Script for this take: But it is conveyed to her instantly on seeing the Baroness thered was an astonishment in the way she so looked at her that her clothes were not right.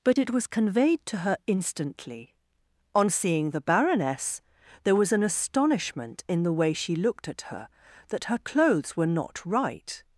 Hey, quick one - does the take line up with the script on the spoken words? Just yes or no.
no